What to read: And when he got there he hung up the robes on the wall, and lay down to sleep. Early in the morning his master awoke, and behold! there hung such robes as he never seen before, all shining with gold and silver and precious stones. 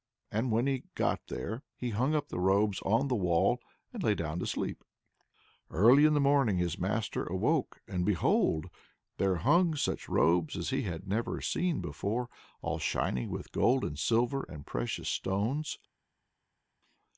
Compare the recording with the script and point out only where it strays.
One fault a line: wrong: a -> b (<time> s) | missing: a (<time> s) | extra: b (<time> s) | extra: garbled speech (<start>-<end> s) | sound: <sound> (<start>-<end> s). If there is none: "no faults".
extra: had (10.8 s)